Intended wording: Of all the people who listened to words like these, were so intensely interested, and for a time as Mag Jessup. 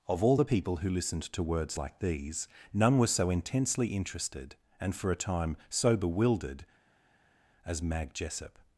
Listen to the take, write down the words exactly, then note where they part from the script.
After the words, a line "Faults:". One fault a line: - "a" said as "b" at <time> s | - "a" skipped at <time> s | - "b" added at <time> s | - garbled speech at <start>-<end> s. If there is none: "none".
Of all the people who listened to words like these, none were so intensely interested, and for a time so bewildered, as Mag Jessup.
Faults:
- "none" added at 2.7 s
- "so bewildered" added at 5.7 s